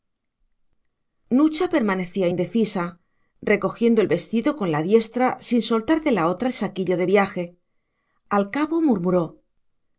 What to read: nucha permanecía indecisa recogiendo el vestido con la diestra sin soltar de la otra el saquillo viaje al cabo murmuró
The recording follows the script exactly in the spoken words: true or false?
false